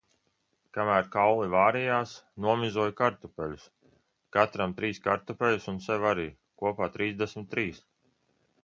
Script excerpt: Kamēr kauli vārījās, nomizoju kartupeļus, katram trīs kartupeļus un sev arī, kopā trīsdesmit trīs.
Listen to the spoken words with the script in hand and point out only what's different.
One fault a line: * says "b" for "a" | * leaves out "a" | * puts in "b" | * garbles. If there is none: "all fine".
all fine